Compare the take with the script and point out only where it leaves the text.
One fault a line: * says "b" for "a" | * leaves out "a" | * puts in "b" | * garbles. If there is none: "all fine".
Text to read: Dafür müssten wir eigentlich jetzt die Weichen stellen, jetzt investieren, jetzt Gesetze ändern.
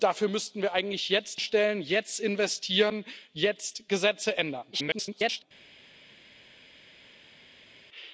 * leaves out "die Weichen"
* garbles